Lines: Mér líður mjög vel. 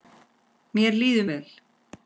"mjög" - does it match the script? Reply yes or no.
no